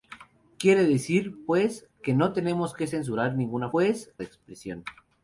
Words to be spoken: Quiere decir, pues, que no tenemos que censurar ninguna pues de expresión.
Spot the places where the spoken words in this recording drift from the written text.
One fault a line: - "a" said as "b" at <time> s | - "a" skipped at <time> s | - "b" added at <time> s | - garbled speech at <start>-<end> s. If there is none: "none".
none